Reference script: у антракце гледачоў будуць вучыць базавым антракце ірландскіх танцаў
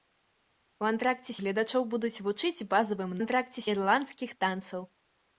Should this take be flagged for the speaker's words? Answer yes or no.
no